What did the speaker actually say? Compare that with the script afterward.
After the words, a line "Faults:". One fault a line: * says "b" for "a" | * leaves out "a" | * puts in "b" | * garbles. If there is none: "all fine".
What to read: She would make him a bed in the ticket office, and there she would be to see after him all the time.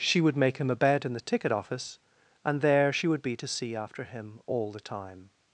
She would make him a bed in the ticket office, and there she would be to see after him all the time.
Faults:
all fine